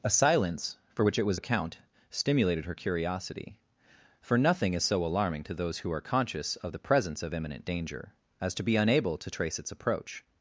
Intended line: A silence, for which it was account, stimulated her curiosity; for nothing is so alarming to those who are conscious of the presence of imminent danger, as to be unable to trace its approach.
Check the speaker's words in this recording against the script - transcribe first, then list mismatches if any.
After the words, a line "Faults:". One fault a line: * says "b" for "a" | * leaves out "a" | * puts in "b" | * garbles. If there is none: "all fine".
A silence, for which it was account, stimulated her curiosity; for nothing is so alarming to those who are conscious of the presence of imminent danger, as to be unable to trace its approach.
Faults:
all fine